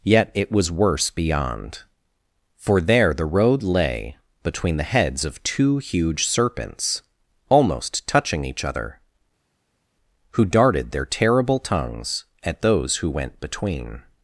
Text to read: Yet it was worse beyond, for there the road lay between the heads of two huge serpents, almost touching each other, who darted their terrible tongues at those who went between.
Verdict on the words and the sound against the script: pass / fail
pass